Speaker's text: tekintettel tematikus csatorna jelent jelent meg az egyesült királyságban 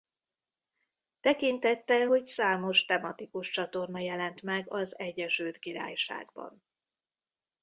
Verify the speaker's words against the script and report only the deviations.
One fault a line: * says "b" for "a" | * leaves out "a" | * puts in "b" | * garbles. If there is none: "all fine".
* puts in "hogy számos"
* leaves out "jelent"